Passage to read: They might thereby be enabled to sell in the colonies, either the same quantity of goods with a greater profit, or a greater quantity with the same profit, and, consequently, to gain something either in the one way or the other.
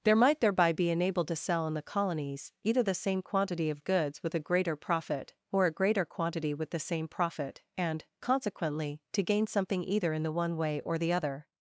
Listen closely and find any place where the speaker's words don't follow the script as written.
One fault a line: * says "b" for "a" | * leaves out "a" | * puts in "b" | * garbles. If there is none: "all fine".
* says "There" for "They"